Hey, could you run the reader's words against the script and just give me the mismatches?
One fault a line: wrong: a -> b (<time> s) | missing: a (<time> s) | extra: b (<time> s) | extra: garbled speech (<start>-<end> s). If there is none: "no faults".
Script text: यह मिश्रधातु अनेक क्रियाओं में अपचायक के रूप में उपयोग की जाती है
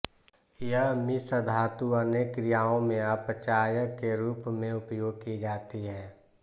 no faults